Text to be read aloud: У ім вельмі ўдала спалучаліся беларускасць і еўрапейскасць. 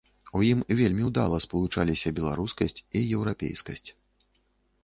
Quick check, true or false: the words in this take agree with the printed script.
true